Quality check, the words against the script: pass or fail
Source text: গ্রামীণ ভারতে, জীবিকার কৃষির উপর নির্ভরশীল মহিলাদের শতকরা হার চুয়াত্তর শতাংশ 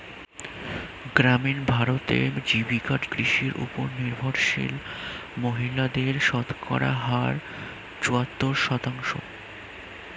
pass